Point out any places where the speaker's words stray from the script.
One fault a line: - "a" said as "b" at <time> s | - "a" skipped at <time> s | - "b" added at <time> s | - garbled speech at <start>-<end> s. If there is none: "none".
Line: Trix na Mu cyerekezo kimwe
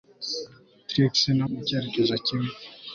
none